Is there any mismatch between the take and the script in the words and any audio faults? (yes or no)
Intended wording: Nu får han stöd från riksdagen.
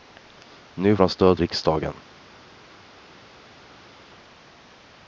yes